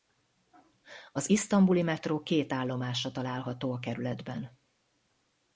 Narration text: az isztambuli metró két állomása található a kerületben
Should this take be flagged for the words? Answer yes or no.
no